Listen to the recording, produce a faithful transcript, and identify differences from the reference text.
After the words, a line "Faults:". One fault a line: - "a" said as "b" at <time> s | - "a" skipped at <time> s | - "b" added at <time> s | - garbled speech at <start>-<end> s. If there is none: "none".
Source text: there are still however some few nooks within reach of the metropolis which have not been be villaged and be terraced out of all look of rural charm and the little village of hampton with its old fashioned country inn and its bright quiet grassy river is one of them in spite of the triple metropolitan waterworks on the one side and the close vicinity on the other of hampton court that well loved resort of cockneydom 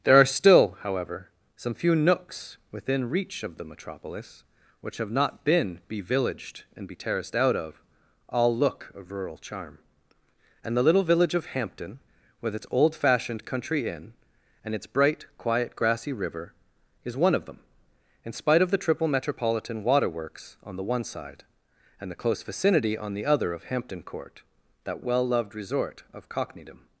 there are still however some few nooks within reach of the metropolis which have not been be villaged and be terraced out of all look of rural charm and the little village of hampton with its old fashioned country inn and its bright quiet grassy river is one of them in spite of the triple metropolitan waterworks on the one side and the close vicinity on the other of hampton court that well loved resort of cockneydom
Faults:
none